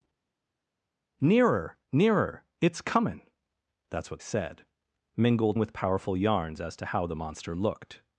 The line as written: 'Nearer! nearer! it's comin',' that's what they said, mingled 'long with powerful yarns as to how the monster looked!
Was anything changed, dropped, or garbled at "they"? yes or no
yes